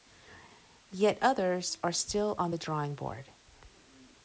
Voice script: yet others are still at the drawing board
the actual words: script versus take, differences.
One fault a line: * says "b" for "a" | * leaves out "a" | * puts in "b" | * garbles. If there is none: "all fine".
* says "on" for "at"